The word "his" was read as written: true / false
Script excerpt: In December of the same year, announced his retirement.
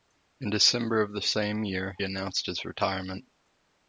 true